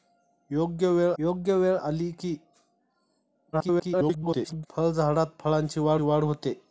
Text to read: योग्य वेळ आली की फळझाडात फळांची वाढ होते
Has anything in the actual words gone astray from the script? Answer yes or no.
yes